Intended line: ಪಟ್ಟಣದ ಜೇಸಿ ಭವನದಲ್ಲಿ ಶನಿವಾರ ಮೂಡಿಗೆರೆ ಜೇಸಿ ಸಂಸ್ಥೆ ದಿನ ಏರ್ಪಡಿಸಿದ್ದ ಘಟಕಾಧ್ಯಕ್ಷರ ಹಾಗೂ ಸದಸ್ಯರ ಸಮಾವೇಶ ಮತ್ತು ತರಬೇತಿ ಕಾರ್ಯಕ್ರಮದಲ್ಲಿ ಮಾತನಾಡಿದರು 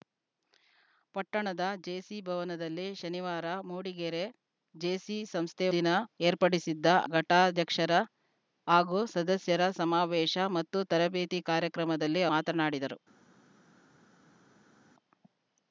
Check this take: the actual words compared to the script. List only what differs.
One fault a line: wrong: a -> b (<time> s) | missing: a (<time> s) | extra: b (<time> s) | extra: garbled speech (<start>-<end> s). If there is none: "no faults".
no faults